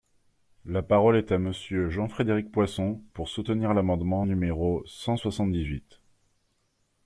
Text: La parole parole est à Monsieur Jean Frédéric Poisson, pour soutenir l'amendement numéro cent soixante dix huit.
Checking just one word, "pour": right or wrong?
right